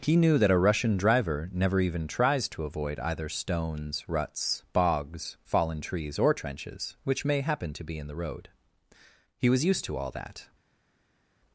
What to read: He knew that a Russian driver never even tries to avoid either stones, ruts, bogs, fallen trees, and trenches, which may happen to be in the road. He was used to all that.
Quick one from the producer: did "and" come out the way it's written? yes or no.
no